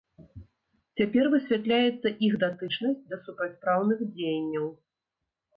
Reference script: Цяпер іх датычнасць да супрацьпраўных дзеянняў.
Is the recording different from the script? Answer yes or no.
yes